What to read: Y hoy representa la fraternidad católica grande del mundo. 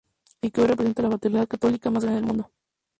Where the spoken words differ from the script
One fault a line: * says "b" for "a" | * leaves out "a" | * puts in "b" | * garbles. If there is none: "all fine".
* puts in "que"
* puts in "más"